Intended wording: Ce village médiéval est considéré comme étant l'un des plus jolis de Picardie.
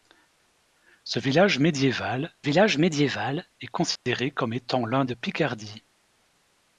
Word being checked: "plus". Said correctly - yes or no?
no